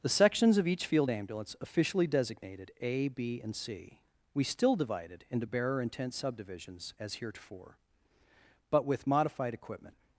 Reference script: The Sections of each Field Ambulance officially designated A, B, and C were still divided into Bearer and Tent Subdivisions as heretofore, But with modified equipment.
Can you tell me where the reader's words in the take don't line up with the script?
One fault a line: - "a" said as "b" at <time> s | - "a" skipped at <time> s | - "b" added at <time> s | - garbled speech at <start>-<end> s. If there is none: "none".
- "were" said as "we" at 4.3 s